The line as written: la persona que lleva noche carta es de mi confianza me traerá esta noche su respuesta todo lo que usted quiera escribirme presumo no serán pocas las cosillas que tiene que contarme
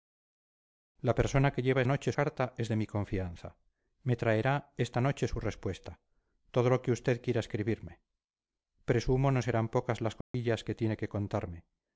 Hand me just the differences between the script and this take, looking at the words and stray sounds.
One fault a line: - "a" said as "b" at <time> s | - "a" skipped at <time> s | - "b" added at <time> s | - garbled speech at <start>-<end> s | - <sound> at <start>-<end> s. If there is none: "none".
- dropout at 10.2-10.3 s